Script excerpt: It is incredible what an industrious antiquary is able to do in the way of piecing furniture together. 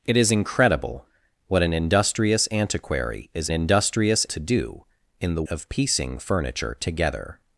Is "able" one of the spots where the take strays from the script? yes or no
yes